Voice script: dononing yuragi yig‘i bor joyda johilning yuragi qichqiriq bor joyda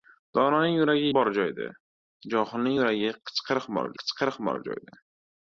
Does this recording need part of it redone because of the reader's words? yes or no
yes